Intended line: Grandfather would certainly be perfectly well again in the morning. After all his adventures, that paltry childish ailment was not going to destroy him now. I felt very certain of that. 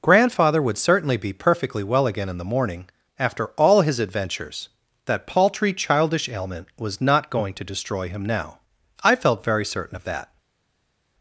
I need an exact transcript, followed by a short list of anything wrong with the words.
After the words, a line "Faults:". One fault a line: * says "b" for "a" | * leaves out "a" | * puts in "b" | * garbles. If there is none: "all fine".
Grandfather would certainly be perfectly well again in the morning. After all his adventures, that paltry childish ailment was not going to destroy him now. I felt very certain of that.
Faults:
all fine